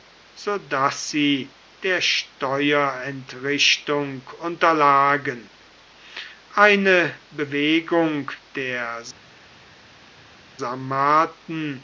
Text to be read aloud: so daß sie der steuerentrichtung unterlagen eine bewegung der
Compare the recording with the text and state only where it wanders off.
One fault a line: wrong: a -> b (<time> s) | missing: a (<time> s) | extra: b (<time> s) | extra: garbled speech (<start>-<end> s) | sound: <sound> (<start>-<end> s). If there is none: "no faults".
no faults